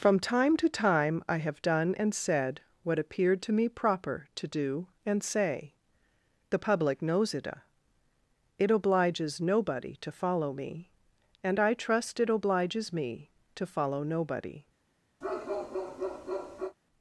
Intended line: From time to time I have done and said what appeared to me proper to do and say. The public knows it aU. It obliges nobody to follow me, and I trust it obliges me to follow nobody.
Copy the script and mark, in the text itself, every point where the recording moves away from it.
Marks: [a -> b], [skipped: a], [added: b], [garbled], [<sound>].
From time to time I have done and said what appeared to me proper to do and say. The public knows it [skipped: aU.] It obliges nobody to follow me, and I trust it obliges me to follow nobody. [bark]